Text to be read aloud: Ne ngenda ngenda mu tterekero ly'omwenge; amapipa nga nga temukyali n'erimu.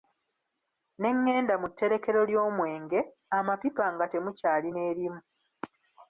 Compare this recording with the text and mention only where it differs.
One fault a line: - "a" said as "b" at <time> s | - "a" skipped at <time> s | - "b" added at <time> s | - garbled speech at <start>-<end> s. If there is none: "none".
- "ngenda" skipped at 1.5 s
- "nga" skipped at 4.0 s